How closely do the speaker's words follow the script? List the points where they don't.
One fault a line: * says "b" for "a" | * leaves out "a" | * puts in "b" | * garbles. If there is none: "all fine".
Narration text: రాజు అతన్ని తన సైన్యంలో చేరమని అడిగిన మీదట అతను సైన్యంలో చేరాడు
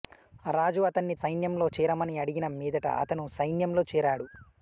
* leaves out "తన"